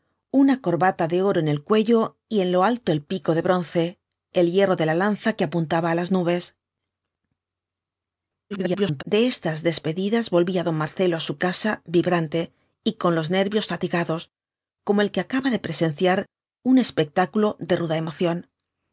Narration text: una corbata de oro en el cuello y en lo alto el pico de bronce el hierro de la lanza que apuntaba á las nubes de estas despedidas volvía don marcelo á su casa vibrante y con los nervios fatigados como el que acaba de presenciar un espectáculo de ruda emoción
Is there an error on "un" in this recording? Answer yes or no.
no